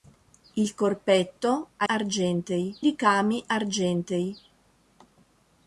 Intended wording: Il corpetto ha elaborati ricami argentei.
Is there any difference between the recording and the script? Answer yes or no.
yes